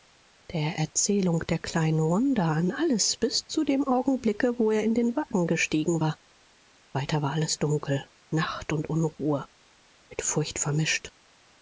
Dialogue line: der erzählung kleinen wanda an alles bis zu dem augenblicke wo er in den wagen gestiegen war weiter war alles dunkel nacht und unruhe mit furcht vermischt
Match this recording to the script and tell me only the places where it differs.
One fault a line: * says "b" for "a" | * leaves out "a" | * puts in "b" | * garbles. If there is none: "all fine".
* puts in "der"